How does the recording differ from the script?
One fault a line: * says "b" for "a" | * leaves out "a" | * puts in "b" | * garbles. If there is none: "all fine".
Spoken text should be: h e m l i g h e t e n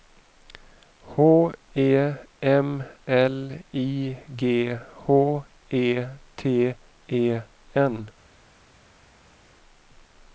all fine